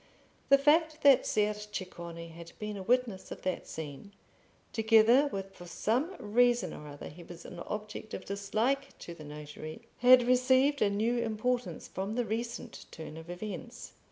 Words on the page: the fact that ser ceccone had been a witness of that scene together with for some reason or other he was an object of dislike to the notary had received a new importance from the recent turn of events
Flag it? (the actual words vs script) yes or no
no